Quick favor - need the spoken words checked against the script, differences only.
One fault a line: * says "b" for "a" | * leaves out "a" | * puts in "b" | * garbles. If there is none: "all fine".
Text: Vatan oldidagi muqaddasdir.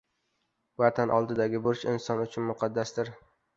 * puts in "burch inson uchun"